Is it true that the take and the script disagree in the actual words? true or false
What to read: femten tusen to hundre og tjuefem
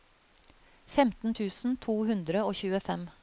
false